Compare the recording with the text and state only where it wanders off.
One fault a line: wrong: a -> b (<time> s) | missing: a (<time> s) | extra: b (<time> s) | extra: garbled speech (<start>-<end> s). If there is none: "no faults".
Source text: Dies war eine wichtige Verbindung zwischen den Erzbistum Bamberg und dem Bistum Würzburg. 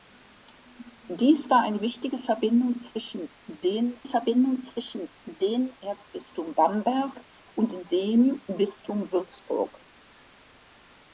extra: Verbindung zwischen den (4.0 s)